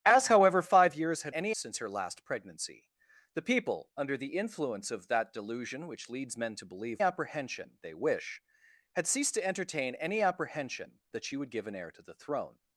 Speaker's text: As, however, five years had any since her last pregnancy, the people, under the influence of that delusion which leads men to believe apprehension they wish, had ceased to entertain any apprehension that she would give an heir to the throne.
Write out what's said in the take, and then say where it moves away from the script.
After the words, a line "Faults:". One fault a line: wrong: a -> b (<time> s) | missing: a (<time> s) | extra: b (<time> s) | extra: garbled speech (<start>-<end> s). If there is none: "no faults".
As, however, five years had any since her last pregnancy, the people, under the influence of that delusion which leads men to believe apprehension they wish, had ceased to entertain any apprehension that she would give an heir to the throne.
Faults:
no faults